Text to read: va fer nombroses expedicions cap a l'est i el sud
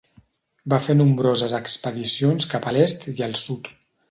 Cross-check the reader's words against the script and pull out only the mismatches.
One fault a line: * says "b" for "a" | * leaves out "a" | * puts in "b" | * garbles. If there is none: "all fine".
all fine